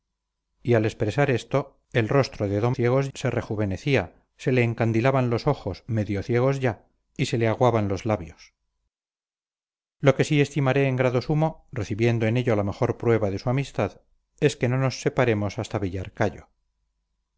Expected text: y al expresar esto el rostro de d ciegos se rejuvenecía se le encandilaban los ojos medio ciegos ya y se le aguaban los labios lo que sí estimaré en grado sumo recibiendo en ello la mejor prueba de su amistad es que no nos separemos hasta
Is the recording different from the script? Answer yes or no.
no